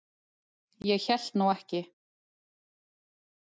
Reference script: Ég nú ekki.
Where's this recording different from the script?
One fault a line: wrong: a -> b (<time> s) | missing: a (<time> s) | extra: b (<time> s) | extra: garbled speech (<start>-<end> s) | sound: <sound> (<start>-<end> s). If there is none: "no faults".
extra: hélt (1.0 s)